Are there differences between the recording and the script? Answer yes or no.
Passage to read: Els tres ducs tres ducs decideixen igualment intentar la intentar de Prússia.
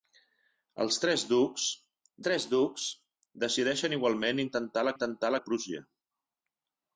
no